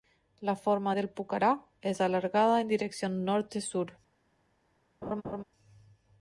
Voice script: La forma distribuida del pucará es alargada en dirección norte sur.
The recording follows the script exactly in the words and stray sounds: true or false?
false